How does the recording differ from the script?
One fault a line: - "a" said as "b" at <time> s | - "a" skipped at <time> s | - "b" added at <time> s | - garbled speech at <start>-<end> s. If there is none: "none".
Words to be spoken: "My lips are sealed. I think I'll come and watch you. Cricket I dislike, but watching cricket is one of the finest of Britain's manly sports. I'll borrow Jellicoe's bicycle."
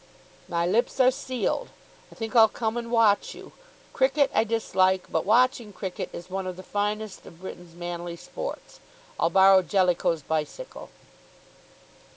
none